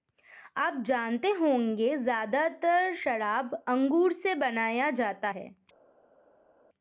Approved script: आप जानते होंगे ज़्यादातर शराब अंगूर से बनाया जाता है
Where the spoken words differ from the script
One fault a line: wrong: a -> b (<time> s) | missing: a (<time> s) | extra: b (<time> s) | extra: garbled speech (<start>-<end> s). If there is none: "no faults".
no faults